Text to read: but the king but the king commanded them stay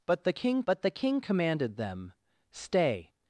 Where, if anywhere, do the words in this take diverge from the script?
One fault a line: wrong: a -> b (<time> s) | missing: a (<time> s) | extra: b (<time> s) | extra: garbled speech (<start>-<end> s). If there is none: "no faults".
no faults